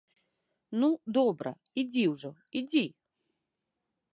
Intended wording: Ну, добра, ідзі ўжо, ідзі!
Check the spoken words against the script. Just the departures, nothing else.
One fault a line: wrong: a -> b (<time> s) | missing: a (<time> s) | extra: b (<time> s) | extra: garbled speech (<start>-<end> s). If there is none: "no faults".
no faults